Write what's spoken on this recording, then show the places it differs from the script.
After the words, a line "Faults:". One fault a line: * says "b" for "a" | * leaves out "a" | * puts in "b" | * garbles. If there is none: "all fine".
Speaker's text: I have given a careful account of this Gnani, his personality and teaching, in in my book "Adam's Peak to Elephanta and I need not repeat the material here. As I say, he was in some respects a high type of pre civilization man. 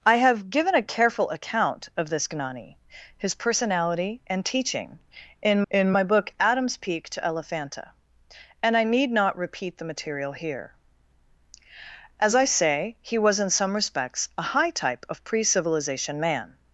I have given a careful account of this Gnani, his personality and teaching, in in my book "Adam's Peak to Elephanta and I need not repeat the material here. As I say, he was in some respects a high type of pre civilization man.
Faults:
all fine